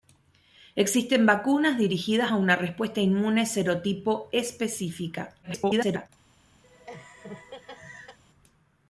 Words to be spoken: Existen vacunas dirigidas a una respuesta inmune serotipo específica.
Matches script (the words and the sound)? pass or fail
fail